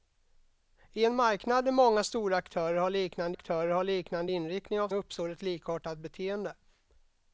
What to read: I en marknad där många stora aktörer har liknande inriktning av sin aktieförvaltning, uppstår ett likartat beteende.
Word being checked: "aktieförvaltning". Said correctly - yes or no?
no